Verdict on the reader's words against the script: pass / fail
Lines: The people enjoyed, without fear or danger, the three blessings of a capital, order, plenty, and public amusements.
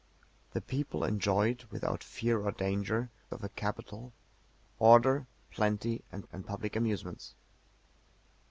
fail